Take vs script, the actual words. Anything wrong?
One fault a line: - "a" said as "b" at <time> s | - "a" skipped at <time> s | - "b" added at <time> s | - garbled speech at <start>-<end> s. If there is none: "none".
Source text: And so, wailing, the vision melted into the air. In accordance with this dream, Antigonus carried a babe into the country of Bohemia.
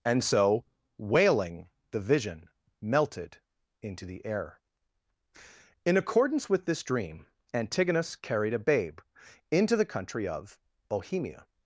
none